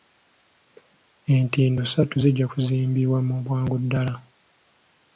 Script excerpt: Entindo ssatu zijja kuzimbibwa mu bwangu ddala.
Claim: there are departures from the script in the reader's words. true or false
false